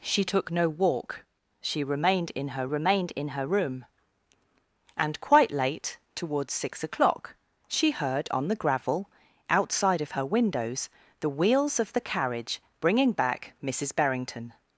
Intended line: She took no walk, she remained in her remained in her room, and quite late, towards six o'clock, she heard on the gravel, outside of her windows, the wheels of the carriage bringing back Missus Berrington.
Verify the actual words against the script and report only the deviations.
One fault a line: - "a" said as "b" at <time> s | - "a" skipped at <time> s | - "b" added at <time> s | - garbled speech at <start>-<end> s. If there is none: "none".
none